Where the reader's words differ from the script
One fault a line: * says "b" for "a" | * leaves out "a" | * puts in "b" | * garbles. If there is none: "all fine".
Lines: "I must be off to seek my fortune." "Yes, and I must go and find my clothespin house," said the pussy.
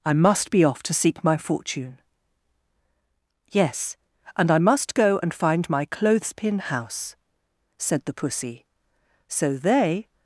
* puts in "So they"